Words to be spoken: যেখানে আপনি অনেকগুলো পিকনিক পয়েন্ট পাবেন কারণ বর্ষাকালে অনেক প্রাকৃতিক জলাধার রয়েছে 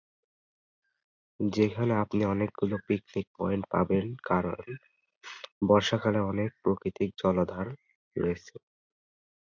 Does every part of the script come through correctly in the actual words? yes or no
yes